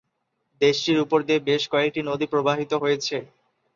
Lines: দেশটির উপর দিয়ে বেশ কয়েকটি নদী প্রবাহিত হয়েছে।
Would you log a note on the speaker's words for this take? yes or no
no